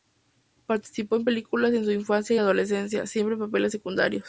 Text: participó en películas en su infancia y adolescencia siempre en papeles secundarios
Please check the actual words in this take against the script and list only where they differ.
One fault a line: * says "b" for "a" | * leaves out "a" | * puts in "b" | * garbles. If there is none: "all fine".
all fine